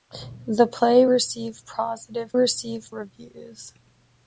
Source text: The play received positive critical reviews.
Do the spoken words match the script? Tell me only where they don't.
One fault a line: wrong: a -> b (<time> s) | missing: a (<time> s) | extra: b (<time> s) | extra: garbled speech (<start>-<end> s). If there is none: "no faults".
wrong: critical -> received (2.3 s)